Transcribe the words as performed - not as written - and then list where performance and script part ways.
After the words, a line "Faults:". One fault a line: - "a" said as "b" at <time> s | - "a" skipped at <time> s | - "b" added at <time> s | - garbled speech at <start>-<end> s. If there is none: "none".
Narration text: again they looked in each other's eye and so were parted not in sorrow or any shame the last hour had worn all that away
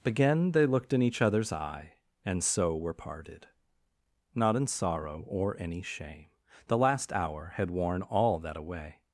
again they looked in each other's eye and so were parted not in sorrow or any shame the last hour had worn all that away
Faults:
none